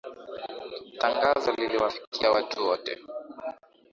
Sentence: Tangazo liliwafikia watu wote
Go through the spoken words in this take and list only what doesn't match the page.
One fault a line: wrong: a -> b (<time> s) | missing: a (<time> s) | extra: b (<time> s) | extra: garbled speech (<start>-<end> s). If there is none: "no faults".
no faults